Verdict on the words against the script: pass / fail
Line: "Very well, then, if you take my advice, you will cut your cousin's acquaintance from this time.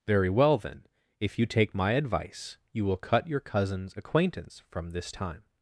pass